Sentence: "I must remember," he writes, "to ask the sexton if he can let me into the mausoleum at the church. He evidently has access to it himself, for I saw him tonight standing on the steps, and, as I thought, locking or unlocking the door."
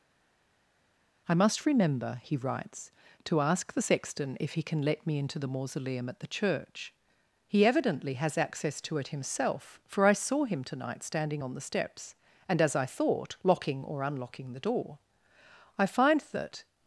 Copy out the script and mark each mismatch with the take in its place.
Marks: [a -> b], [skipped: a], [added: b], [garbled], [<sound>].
"I must remember," he writes, "to ask the sexton if he can let me into the mausoleum at the church. He evidently has access to it himself, for I saw him tonight standing on the steps, and, as I thought, locking or unlocking the door." [added: I find that]